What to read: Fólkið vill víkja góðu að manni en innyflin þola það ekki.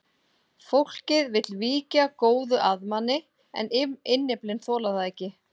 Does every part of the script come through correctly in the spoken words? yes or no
yes